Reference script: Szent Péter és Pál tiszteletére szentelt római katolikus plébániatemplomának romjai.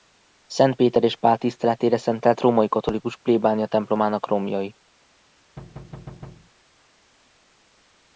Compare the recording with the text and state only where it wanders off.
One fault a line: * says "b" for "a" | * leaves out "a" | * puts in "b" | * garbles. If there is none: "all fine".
all fine